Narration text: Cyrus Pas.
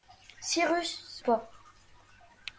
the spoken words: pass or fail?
pass